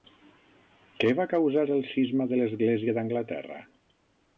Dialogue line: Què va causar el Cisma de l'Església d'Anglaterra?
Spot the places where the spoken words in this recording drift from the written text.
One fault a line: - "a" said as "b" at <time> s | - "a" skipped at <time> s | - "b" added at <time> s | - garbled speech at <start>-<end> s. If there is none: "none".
none